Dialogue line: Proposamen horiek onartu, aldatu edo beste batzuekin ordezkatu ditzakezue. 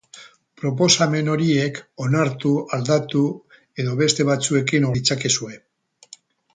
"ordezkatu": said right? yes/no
no